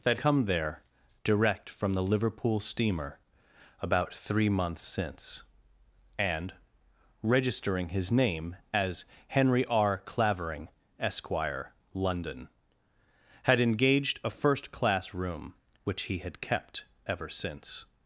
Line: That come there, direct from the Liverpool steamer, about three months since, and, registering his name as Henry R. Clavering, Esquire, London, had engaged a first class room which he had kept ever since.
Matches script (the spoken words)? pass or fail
pass